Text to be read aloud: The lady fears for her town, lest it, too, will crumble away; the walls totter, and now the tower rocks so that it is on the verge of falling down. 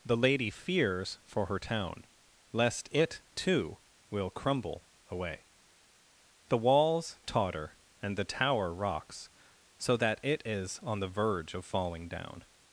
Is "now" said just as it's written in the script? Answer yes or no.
no